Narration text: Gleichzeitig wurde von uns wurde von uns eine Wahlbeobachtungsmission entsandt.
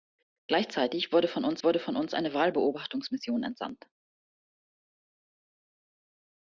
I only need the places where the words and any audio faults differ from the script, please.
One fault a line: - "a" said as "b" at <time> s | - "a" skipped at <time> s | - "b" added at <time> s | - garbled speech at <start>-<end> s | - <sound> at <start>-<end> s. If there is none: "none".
none